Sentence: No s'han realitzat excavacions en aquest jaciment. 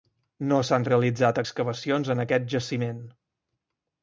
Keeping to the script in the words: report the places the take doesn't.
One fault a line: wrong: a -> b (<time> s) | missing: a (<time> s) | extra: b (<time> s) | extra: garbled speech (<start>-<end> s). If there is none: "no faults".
no faults